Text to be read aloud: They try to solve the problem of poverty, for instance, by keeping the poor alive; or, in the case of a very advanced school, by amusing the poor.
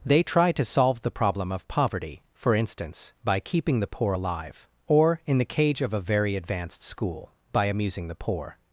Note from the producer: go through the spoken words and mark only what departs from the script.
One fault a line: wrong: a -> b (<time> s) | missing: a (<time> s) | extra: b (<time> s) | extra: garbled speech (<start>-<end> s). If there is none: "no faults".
wrong: case -> cage (5.4 s)